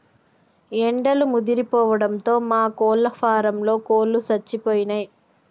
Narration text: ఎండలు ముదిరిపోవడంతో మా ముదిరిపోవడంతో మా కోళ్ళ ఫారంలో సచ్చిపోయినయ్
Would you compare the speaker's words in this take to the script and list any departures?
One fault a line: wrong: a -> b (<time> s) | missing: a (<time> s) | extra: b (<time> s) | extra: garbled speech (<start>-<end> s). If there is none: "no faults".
missing: ముదిరిపోవడంతో మా (2.6 s)
extra: కోళ్ళు (3.9 s)